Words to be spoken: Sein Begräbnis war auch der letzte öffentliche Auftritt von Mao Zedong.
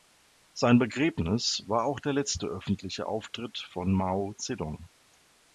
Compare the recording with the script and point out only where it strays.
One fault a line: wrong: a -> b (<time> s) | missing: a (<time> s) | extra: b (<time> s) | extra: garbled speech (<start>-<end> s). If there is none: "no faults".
no faults